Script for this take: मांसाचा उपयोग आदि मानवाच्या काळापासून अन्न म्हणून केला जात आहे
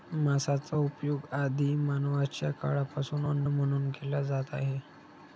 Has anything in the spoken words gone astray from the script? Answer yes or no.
no